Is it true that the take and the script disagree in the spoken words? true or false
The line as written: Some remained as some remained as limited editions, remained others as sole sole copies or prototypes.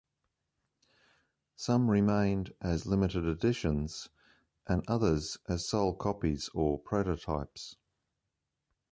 true